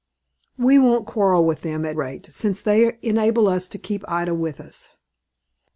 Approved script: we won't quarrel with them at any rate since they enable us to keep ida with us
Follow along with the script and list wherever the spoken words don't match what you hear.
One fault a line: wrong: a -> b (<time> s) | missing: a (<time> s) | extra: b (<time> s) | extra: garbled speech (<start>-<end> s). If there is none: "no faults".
missing: any (1.9 s)